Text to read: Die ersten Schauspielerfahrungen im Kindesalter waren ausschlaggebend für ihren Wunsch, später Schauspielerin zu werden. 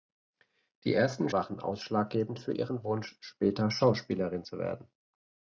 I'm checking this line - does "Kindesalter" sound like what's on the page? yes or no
no